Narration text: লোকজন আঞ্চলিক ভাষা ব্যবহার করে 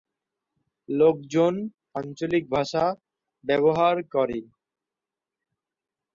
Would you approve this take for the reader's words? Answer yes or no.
yes